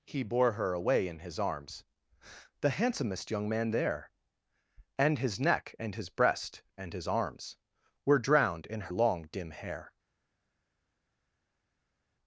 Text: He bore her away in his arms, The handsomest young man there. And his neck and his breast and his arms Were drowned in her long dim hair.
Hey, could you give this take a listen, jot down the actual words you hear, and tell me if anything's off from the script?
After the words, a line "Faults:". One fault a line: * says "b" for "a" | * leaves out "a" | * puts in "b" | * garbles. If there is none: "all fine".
He bore her away in his arms, The handsomest young man there. And his neck and his breast and his arms Were drowned in long dim hair.
Faults:
* leaves out "her"